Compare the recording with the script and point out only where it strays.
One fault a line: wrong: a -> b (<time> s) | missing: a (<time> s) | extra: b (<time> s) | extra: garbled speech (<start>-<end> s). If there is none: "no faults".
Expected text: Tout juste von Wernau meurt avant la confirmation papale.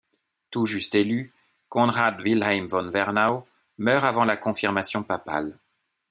extra: élu Konrad Wilhelm (0.9 s)